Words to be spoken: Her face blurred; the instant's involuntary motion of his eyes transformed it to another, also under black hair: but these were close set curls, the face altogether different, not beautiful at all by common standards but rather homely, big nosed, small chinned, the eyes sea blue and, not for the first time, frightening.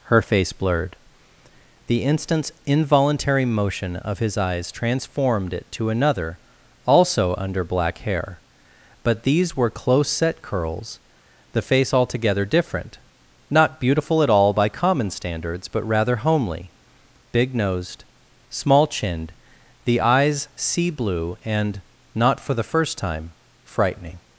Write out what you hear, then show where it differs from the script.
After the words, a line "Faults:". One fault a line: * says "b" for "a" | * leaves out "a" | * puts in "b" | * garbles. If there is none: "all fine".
Her face blurred; the instant's involuntary motion of his eyes transformed it to another, also under black hair: but these were close set curls, the face altogether different, not beautiful at all by common standards but rather homely, big nosed, small chinned, the eyes sea blue and, not for the first time, frightening.
Faults:
all fine